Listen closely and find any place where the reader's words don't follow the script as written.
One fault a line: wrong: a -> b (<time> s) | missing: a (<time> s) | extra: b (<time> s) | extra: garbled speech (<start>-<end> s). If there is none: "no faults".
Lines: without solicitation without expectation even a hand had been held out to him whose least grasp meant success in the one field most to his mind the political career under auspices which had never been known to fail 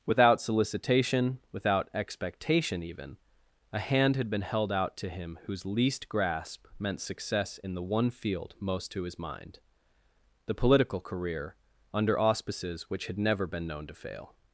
no faults